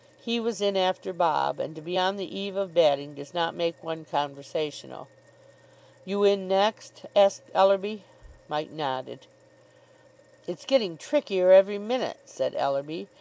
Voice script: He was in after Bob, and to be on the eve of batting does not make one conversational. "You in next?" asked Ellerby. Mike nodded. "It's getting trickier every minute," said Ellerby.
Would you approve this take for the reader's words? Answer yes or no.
yes